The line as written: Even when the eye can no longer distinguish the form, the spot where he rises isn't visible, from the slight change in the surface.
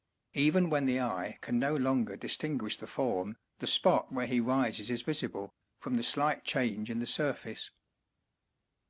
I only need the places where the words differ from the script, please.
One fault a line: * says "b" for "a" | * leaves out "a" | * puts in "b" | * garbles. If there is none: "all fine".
* says "is" for "isn't"